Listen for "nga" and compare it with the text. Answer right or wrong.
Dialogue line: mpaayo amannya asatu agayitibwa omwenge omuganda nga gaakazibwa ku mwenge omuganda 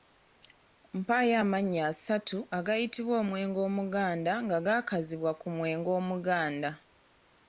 right